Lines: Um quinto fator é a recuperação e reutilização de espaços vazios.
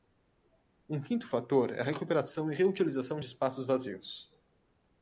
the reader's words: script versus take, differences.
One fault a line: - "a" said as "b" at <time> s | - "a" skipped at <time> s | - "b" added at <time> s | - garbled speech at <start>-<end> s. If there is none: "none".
none